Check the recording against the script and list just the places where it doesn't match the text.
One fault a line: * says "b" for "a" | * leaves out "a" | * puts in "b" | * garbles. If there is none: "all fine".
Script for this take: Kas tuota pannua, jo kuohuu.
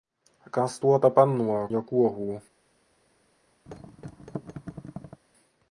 all fine